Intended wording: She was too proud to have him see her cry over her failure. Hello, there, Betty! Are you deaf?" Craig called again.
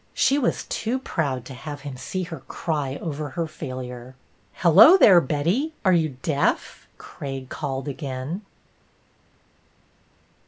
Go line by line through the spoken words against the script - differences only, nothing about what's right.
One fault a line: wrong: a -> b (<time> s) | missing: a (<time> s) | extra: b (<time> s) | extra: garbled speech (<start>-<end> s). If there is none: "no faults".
no faults